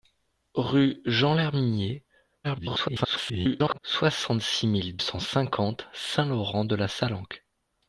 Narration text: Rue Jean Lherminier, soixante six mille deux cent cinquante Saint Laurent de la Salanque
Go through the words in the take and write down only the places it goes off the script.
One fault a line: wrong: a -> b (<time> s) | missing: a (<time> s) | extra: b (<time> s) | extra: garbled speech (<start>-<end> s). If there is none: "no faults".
extra: garbled speech (2.4-3.8 s)
missing: deux (5.0 s)